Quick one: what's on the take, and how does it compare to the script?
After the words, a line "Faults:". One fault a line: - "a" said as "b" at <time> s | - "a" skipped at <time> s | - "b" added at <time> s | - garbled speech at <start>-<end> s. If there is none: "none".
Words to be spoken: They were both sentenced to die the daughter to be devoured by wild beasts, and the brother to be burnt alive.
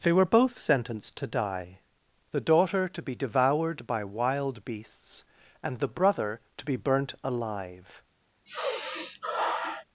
They were both sentenced to die the daughter to be devoured by wild beasts, and the brother to be burnt alive.
Faults:
none